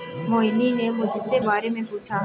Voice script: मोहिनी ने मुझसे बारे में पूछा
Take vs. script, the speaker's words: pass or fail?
pass